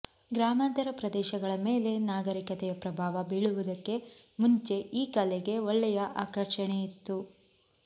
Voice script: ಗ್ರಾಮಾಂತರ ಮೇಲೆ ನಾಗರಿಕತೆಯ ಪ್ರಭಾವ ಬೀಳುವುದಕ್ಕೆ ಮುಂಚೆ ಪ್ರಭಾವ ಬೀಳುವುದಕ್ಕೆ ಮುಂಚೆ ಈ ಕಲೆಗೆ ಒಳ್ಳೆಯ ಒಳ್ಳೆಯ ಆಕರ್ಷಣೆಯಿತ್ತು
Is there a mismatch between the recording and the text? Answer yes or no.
yes